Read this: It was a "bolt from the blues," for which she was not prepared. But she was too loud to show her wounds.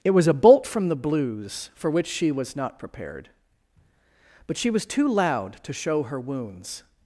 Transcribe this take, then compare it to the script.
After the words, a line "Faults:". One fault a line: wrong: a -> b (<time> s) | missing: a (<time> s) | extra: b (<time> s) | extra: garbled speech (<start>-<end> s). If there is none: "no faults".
It was a "bolt from the blues," for which she was not prepared. But she was too loud to show her wounds.
Faults:
no faults